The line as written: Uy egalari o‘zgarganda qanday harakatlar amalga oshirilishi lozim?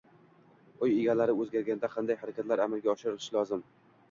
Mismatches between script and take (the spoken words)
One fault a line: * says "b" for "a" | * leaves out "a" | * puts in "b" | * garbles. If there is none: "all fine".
all fine